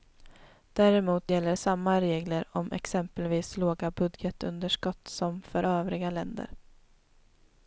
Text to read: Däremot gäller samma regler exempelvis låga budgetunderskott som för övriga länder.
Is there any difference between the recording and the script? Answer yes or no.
yes